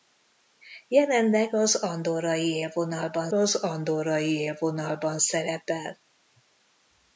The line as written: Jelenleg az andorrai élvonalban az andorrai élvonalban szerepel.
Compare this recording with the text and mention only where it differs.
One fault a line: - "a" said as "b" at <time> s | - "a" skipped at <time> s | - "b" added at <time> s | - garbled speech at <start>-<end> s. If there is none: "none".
none